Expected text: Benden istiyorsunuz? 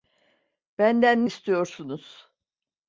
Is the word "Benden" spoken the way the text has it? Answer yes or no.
yes